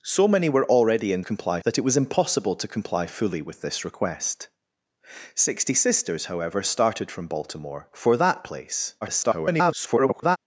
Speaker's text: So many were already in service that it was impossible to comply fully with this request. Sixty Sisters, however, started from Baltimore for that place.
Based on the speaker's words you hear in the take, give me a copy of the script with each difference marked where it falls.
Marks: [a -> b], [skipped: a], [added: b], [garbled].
So many were already in [service -> comply] that it was impossible to comply fully with this request. Sixty Sisters, however, started from Baltimore for that place. [garbled]